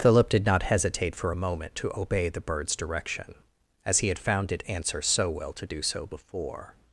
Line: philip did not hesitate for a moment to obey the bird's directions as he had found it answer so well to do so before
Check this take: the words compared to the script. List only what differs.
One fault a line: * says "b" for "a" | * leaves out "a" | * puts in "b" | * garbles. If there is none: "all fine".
* says "direction" for "directions"